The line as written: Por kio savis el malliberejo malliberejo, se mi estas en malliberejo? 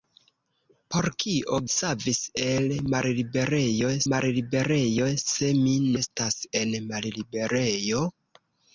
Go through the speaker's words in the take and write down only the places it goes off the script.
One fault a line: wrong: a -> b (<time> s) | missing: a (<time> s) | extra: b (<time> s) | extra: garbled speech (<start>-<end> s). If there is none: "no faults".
no faults